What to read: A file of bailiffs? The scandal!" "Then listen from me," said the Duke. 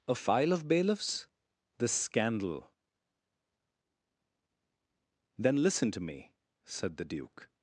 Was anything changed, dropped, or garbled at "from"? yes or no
yes